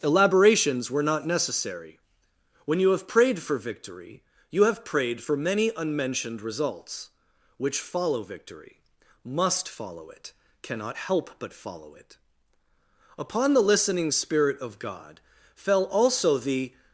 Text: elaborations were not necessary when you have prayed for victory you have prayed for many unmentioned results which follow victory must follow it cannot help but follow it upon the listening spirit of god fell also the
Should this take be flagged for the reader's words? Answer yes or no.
no